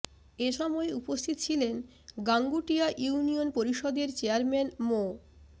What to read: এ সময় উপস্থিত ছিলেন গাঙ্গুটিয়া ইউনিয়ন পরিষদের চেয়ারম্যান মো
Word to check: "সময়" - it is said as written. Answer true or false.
true